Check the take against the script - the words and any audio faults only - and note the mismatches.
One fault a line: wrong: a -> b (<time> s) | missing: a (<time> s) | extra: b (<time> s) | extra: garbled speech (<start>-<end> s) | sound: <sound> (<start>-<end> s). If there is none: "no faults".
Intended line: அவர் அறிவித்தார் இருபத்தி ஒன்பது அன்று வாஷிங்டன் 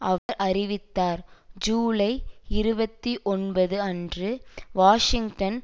sound: dropout (0.2-0.3 s)
extra: ஜூலை (1.6 s)